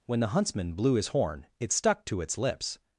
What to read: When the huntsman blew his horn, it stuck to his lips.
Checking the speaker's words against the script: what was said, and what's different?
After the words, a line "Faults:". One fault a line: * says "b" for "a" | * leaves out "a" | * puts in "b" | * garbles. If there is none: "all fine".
When the huntsman blew his horn, it stuck to its lips.
Faults:
* says "its" for "his"